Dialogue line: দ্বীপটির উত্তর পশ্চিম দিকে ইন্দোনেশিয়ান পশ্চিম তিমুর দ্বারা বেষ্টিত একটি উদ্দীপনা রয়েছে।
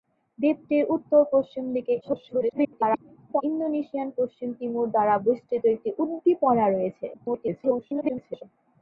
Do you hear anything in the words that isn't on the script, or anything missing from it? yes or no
yes